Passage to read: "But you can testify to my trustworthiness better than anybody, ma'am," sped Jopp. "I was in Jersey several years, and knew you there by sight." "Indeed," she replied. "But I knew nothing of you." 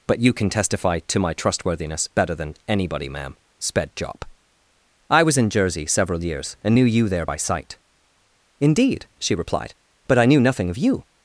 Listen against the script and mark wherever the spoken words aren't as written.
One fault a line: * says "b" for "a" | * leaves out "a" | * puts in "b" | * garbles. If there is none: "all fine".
all fine